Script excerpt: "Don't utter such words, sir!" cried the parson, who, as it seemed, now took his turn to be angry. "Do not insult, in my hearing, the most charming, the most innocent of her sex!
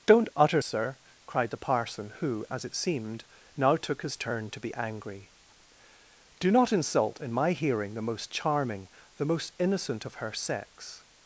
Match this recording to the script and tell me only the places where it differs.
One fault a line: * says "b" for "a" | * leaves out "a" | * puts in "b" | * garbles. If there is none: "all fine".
* leaves out "such words"